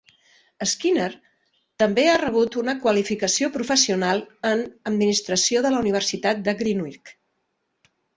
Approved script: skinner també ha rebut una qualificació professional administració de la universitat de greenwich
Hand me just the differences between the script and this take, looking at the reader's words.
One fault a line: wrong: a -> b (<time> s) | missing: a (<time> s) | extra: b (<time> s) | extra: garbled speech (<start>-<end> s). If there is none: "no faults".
extra: en (4.5 s)